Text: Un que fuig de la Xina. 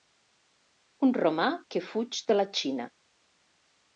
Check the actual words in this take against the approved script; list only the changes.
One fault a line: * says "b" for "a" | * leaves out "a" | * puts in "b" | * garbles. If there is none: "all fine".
* puts in "romà"